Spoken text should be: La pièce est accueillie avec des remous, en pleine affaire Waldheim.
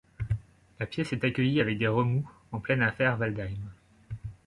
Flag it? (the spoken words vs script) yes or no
no